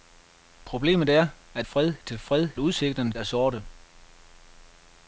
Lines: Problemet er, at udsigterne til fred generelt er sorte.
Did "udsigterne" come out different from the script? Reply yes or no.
yes